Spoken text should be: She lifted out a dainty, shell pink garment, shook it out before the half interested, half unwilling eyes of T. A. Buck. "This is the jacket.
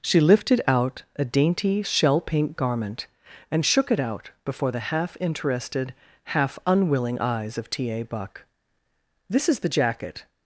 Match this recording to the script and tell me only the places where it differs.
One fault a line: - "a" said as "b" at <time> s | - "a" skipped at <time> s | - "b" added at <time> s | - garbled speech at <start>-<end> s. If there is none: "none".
- "and" added at 3.5 s